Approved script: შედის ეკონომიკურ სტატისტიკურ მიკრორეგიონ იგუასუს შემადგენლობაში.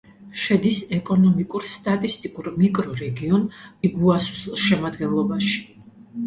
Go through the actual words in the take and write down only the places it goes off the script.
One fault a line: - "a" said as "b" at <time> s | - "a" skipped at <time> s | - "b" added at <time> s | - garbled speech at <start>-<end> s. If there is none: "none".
none